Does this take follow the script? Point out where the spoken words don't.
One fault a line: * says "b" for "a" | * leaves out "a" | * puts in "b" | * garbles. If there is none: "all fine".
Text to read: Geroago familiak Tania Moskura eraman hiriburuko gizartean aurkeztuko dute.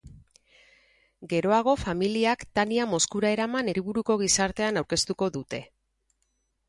all fine